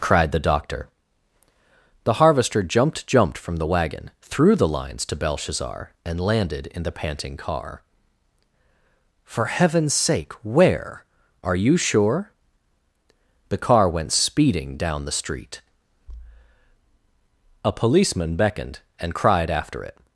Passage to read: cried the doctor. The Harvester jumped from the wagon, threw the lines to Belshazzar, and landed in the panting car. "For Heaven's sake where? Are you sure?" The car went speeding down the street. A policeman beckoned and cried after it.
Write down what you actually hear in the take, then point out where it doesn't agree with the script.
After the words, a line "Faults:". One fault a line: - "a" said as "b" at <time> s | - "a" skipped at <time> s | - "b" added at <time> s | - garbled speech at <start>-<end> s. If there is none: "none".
cried the doctor. The Harvester jumped jumped from the wagon, threw the lines to Belshazzar, and landed in the panting car. "For Heaven's sake where? Are you sure?" The car went speeding down the street. A policeman beckoned and cried after it.
Faults:
- "jumped" added at 3.1 s